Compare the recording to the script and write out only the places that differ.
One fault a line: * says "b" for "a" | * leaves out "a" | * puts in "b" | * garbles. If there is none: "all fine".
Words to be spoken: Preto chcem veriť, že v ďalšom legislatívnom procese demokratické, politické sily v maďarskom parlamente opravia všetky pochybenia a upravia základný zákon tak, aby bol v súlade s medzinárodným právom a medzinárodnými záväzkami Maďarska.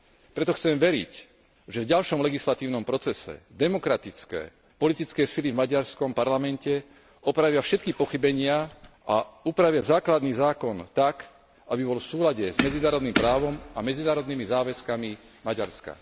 all fine